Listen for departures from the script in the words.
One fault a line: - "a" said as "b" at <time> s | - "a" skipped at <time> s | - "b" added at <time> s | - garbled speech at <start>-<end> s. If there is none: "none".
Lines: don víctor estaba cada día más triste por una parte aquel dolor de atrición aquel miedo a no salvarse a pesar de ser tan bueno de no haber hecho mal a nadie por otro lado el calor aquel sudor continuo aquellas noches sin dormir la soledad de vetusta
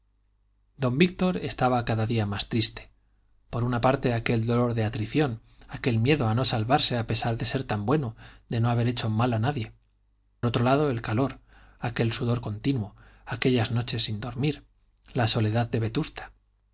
- "por" skipped at 9.7 s